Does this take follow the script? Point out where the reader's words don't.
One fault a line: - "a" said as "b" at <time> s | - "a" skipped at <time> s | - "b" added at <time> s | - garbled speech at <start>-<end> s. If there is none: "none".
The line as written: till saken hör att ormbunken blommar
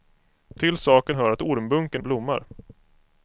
none